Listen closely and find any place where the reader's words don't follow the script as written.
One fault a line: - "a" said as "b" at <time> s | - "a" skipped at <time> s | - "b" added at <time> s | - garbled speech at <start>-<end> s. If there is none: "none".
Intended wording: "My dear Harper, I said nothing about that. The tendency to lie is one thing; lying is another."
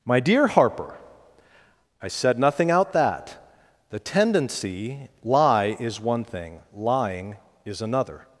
- "about" said as "out" at 2.7 s
- "to" skipped at 5.1 s